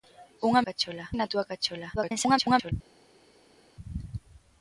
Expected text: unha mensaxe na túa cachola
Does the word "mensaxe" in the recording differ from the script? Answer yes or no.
yes